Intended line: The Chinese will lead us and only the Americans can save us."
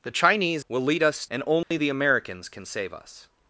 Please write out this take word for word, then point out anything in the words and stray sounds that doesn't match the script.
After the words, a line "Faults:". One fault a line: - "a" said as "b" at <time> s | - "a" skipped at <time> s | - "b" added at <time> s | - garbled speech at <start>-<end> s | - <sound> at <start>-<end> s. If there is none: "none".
The Chinese will lead us and only the Americans can save us."
Faults:
- dropout at 1.6-1.7 s